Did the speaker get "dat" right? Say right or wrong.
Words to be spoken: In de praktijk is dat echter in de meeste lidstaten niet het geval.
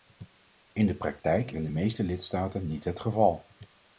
wrong